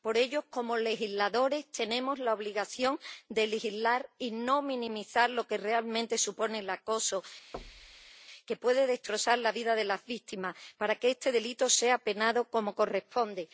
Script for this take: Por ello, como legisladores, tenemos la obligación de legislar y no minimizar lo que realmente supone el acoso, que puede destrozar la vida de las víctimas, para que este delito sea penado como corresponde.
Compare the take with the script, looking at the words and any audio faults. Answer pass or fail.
fail